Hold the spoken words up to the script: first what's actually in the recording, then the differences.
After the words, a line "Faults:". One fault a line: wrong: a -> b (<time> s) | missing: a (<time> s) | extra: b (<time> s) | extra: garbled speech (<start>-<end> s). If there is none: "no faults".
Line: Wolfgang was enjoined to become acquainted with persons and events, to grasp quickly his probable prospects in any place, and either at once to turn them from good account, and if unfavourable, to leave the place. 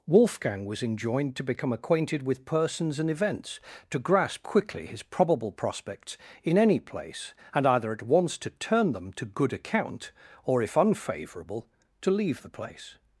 Wolfgang was enjoined to become acquainted with persons and events, to grasp quickly his probable prospects in any place, and either at once to turn them to good account, or if unfavourable, to leave the place.
Faults:
wrong: from -> to (9.1 s)
wrong: and -> or (10.4 s)